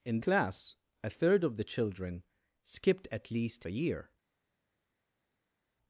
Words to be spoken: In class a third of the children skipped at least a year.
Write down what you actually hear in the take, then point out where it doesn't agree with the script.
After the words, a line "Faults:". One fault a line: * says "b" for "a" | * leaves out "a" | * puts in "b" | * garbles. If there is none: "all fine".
In class a third of the children skipped at least a year.
Faults:
all fine